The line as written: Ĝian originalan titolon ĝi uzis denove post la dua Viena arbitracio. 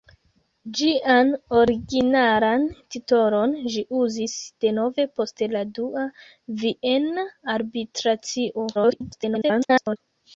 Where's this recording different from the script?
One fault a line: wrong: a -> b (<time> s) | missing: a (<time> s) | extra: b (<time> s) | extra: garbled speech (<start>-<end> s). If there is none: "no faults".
extra: garbled speech (8.7-10.0 s)